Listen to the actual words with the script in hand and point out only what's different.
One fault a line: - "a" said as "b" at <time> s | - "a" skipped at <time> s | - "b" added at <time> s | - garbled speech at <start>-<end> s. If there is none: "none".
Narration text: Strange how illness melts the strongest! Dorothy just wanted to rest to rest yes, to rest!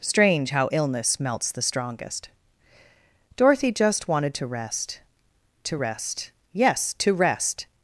none